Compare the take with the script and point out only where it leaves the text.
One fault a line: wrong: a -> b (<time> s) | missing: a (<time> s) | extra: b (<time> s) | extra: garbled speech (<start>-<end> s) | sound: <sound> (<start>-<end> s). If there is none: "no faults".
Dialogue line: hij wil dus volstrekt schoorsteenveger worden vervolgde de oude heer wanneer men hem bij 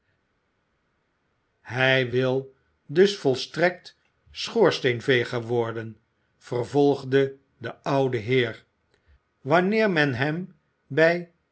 no faults